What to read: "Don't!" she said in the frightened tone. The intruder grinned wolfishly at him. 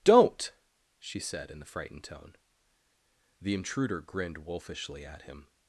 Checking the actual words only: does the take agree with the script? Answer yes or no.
yes